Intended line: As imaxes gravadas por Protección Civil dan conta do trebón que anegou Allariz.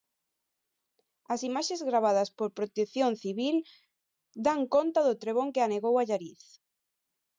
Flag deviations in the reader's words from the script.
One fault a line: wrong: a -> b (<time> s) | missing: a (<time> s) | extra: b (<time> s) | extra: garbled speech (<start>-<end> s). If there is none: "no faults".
no faults